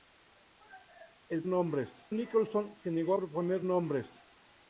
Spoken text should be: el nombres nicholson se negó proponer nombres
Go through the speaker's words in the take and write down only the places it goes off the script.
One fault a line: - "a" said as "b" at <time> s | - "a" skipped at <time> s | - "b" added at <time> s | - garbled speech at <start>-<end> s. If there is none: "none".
none